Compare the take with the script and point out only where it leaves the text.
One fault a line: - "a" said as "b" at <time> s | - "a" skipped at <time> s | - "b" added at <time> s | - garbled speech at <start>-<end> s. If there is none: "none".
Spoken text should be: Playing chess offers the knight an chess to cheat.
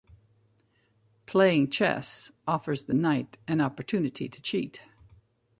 - "chess" said as "opportunity" at 3.6 s